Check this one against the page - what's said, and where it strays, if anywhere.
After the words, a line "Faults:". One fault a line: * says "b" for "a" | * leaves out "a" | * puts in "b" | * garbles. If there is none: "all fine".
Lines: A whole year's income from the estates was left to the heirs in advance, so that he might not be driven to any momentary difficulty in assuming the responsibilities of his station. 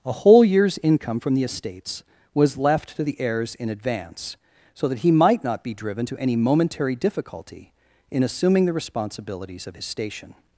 A whole year's income from the estates was left to the heirs in advance, so that he might not be driven to any momentary difficulty in assuming the responsibilities of his station.
Faults:
all fine